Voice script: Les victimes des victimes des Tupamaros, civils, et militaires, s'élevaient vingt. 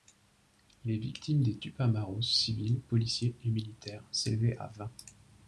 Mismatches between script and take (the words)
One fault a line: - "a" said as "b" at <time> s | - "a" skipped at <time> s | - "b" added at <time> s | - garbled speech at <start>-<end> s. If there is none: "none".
- "victimes des" skipped at 1.6 s
- "policiers" added at 2.8 s
- "à" added at 4.6 s